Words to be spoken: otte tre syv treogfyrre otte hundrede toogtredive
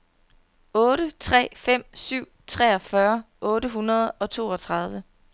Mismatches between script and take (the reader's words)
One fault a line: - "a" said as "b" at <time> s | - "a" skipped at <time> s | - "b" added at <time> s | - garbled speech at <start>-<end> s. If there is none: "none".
- "fem" added at 1.5 s
- "og" added at 4.1 s